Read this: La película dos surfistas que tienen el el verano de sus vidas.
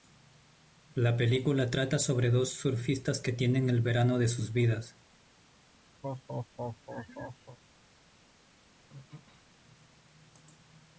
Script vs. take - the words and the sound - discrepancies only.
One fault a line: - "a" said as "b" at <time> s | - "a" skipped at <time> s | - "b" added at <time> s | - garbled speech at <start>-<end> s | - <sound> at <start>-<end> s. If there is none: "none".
- "trata sobre" added at 1.7 s
- "el" skipped at 3.8 s
- laugh at 6.0-7.6 s
- throat clearing at 8.9-9.5 s